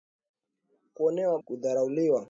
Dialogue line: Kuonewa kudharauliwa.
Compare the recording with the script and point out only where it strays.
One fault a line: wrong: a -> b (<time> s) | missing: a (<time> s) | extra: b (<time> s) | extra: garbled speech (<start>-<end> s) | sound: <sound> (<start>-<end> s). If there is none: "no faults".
no faults